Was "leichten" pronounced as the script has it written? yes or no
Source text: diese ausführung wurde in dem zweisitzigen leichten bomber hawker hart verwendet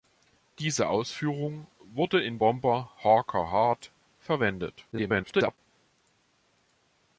no